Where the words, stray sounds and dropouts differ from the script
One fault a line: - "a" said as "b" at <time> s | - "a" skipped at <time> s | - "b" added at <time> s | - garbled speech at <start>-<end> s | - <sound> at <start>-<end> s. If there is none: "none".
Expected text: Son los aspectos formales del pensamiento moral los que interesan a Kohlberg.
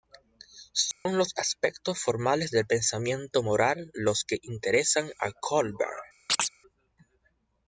- dropout at 0.9-1.1 s
- chirp at 6.3-6.5 s